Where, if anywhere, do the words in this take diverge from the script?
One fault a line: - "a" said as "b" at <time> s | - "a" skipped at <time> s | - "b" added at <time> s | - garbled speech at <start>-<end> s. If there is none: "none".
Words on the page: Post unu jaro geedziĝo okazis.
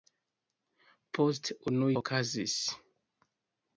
- "jaro geedziĝo" skipped at 1.9 s